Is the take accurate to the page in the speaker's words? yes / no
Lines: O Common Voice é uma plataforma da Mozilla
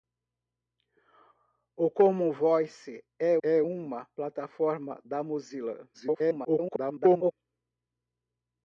no